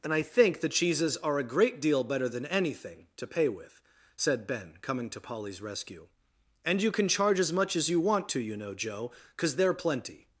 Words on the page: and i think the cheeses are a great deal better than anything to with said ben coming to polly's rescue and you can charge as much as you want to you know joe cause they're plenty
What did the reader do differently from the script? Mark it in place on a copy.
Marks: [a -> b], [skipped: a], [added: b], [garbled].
and i think the cheeses are a great deal better than anything to [added: pay] with said ben coming to polly's rescue and you can charge as much as you want to you know joe cause they're plenty